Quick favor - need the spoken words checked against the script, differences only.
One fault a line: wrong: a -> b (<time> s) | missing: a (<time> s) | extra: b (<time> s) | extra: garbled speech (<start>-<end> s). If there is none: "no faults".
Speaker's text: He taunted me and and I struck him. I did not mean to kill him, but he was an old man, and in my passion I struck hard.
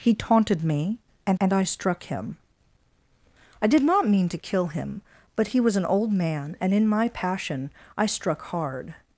no faults